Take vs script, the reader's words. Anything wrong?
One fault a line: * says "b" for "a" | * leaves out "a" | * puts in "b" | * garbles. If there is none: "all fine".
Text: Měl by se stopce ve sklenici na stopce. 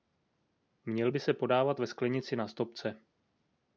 * says "podávat" for "stopce"